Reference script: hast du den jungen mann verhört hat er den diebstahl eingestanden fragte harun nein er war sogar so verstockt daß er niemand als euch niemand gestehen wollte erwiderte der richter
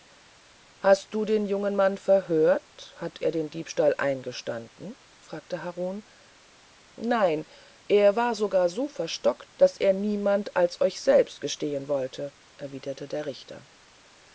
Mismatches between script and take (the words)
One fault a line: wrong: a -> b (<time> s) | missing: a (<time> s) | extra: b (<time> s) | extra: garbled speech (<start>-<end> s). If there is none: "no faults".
wrong: niemand -> selbst (11.0 s)